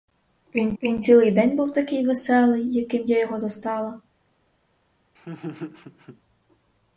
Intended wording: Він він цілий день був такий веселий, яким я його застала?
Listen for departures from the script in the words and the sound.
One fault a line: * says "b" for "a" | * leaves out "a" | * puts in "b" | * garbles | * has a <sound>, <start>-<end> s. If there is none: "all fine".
* has a laugh, 5.2-6.2 s